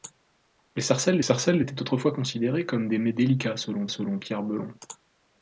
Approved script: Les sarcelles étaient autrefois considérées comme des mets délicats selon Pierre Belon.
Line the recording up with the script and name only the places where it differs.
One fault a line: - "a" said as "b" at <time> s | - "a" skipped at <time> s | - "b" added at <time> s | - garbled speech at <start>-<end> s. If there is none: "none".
- "sarcelles" added at 1.2 s
- "selon" added at 3.9 s